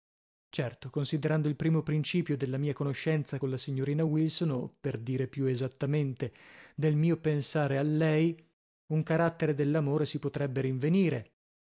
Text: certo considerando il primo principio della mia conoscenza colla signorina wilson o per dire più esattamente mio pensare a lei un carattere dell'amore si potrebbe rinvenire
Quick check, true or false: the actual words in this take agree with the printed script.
false